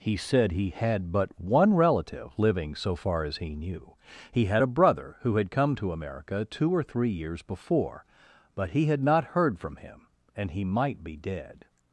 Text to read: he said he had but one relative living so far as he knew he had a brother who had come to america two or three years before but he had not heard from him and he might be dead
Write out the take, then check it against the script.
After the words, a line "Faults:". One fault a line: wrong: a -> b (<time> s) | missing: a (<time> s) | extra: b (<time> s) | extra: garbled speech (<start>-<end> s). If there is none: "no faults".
he said he had but one relative living so far as he knew he had a brother who had come to america two or three years before but he had not heard from him and he might be dead
Faults:
no faults